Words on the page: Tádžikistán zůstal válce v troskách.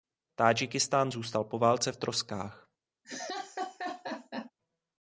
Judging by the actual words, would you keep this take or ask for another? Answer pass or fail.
fail